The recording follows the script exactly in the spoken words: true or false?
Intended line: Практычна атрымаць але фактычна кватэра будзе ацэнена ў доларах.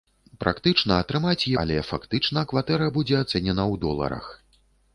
true